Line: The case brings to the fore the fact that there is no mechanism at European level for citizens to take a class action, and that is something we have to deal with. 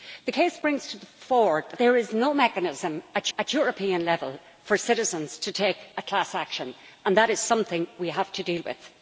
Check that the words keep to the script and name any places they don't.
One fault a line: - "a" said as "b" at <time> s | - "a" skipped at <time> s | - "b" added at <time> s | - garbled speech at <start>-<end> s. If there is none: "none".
- "fact that" skipped at 1.7 s
- "at" added at 3.4 s